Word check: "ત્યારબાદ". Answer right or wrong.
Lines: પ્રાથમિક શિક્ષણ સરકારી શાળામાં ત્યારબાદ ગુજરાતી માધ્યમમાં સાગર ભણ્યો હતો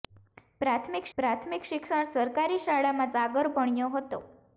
wrong